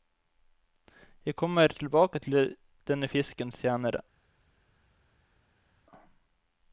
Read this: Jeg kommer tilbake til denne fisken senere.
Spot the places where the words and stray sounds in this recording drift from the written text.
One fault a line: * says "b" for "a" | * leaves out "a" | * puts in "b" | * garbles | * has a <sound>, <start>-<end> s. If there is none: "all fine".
all fine